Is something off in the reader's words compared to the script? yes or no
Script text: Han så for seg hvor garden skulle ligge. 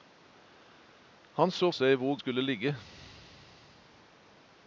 yes